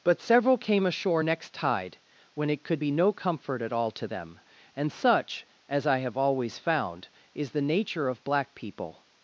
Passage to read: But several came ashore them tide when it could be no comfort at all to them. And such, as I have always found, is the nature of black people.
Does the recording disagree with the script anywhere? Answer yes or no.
yes